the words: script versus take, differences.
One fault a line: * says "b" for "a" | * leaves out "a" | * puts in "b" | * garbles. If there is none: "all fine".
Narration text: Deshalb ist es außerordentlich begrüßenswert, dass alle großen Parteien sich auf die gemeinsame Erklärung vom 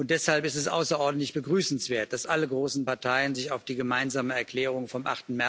all fine